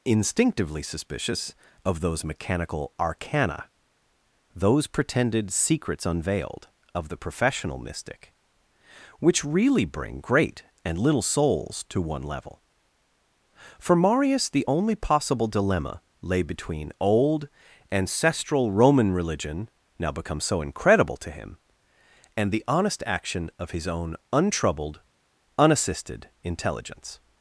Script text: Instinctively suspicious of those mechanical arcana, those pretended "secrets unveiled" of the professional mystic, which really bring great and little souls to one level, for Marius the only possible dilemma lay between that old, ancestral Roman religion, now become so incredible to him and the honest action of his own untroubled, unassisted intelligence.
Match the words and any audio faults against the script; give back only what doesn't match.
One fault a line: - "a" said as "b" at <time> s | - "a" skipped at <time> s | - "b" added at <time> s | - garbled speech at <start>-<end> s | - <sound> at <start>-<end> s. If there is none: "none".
- "that" skipped at 16.9 s